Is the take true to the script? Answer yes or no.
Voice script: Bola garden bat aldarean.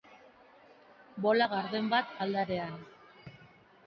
yes